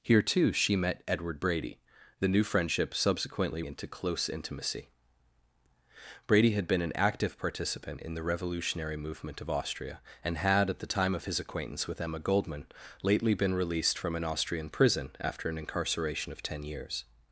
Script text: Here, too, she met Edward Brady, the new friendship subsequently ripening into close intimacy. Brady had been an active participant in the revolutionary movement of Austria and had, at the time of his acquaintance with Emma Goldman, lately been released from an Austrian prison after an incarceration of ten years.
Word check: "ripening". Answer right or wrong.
wrong